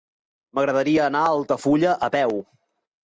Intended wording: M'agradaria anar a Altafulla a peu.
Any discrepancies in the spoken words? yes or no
no